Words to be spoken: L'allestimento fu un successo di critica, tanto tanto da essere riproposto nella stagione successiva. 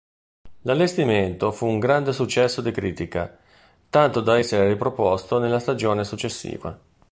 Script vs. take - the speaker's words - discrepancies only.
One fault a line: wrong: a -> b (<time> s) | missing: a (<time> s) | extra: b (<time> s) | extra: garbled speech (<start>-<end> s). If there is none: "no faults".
extra: grande (1.8 s)
missing: tanto (4.2 s)